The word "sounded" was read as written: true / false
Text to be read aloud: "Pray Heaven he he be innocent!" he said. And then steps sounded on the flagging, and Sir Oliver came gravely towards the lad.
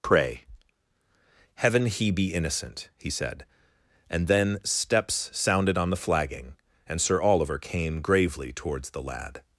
true